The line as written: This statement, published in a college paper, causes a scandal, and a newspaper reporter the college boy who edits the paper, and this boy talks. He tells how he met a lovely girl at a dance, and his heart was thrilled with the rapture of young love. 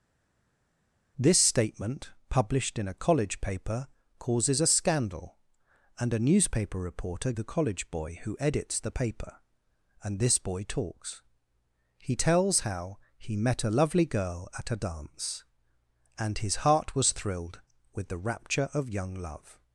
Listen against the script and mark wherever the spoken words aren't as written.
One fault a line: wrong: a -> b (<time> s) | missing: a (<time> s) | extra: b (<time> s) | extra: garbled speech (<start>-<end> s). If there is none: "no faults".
no faults